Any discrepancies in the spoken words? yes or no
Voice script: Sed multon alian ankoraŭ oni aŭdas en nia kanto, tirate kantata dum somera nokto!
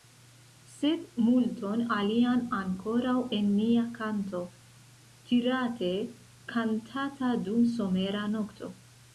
yes